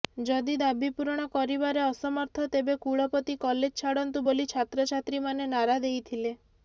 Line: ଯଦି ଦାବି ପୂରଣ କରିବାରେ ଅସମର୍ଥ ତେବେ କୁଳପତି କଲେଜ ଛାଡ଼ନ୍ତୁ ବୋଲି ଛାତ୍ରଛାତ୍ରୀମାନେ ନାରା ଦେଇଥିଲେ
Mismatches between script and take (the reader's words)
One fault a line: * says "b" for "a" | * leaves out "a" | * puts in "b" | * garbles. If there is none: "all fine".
all fine